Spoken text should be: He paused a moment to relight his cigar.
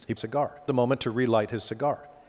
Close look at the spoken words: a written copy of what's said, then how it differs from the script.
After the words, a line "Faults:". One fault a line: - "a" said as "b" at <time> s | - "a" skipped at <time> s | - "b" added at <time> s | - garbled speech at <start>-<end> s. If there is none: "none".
He cigar a moment to relight his cigar.
Faults:
- "paused" said as "cigar" at 0.2 s